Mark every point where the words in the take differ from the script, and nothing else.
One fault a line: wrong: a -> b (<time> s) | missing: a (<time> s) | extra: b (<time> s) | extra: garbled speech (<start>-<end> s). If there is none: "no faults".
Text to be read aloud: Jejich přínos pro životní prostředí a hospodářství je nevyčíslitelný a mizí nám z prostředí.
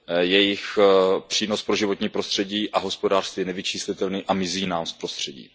no faults